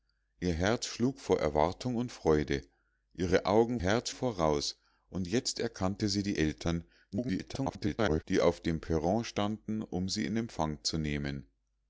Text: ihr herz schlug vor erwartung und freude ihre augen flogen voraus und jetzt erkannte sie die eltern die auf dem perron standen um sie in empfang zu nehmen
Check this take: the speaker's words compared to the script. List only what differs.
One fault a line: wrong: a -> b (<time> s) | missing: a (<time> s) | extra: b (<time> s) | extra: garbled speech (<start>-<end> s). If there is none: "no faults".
wrong: flogen -> herz (3.8 s)
extra: garbled speech (7.1-8.2 s)